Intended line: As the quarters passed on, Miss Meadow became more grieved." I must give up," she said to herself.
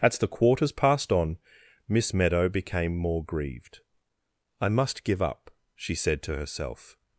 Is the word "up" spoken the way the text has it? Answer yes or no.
yes